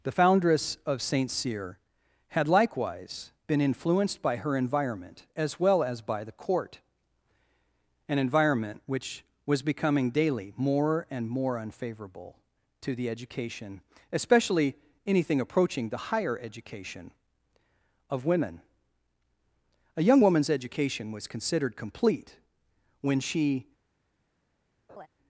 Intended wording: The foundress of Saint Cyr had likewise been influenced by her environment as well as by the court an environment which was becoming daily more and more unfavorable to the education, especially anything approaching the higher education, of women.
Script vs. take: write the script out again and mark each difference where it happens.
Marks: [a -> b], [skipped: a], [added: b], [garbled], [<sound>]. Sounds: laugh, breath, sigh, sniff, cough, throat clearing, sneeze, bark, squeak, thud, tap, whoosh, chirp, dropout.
The foundress of Saint Cyr had likewise been influenced by her environment as well as by the court an environment which was becoming daily more and more unfavorable to the education, especially anything approaching the higher education, of women. [added: A young woman's education was considered complete when she] [laugh]